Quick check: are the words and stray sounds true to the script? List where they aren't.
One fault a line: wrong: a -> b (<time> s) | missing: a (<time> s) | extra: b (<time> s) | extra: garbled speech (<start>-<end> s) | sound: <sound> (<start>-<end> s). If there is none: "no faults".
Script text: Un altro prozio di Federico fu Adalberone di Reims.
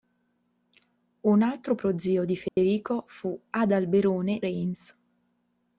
sound: dropout (2.5-2.6 s)
missing: di (4.4 s)